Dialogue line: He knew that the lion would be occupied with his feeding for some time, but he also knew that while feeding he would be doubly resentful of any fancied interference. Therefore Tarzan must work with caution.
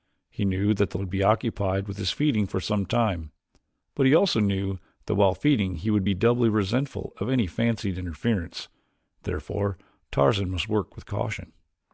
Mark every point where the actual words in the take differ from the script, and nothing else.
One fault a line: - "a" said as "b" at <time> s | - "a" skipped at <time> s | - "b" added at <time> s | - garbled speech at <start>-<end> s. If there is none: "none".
- "lion" skipped at 1.0 s